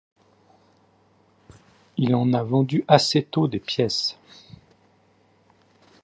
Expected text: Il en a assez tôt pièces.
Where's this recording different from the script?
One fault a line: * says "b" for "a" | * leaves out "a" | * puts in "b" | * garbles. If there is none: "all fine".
* puts in "vendu"
* puts in "des"